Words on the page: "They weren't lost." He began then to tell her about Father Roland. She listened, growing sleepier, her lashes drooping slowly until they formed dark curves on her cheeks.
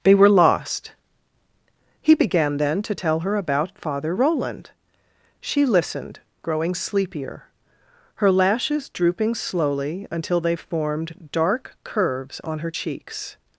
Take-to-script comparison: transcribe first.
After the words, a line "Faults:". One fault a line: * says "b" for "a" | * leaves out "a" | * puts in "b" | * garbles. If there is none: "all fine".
"They were lost." He began then to tell her about Father Roland. She listened, growing sleepier, her lashes drooping slowly until they formed dark curves on her cheeks.
Faults:
* says "were" for "weren't"